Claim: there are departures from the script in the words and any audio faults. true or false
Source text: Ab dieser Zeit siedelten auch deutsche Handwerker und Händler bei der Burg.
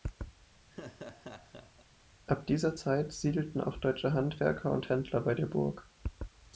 true